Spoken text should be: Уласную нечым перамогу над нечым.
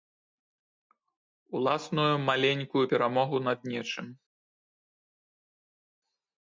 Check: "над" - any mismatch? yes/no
no